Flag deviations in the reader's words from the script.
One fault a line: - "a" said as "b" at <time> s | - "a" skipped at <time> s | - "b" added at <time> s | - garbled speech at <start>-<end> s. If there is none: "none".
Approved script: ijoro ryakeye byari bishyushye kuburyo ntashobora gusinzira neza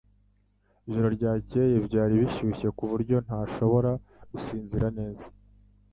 none